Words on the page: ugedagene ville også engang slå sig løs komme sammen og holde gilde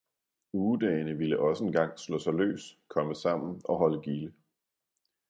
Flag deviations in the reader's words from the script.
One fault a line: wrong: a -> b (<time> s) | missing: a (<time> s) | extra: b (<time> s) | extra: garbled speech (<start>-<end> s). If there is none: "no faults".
no faults